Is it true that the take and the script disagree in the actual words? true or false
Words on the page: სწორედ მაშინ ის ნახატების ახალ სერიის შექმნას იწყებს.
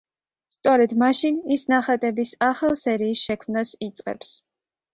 false